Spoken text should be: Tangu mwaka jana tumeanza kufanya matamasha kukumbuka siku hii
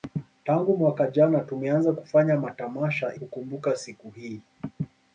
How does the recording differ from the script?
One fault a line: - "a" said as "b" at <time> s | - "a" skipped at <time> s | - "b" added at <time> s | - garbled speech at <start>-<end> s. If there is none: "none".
none